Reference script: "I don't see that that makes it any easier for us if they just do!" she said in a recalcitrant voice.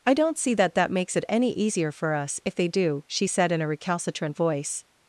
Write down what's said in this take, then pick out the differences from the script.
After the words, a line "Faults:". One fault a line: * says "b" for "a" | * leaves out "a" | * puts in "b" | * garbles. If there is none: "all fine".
"I don't see that that makes it any easier for us if they do!" she said in a recalcitrant voice.
Faults:
* leaves out "just"